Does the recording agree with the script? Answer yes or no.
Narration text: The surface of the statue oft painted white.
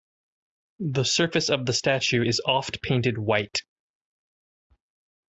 no